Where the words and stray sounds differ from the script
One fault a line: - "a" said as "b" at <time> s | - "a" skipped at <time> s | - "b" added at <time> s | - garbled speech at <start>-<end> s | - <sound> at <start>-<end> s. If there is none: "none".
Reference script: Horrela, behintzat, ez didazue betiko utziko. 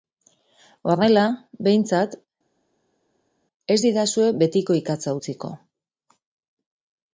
- "ikatza" added at 4.8 s